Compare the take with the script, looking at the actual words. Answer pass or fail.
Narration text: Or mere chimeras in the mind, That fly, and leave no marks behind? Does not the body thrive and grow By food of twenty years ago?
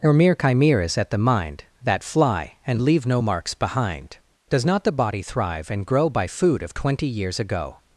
fail